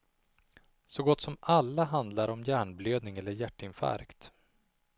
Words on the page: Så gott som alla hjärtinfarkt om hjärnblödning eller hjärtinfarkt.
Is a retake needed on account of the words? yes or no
yes